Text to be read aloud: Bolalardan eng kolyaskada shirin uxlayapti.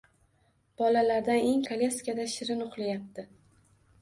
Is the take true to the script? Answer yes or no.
yes